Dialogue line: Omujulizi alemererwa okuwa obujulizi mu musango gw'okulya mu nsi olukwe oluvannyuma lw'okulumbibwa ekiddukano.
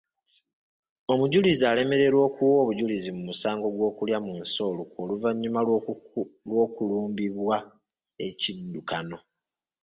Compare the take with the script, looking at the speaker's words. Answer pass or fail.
pass